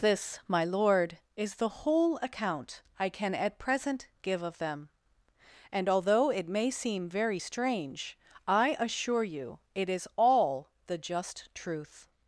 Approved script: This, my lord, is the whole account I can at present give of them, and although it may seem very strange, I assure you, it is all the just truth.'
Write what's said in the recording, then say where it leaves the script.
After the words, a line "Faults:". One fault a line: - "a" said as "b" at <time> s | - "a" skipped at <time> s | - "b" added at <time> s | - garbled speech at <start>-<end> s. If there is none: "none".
This, my lord, is the whole account I can at present give of them, and although it may seem very strange, I assure you, it is all the just truth.'
Faults:
none